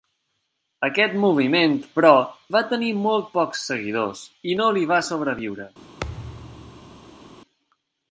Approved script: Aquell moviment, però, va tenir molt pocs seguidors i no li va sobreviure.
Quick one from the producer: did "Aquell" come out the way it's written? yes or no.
no